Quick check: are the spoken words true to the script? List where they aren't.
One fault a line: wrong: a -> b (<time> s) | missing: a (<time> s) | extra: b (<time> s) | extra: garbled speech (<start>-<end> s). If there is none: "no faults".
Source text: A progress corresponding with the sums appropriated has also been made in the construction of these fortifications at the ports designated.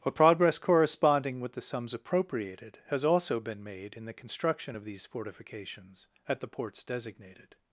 no faults